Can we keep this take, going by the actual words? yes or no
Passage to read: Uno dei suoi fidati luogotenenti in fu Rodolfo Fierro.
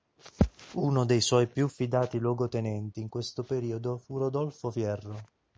no